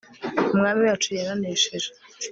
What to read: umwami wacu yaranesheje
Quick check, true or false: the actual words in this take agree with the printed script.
true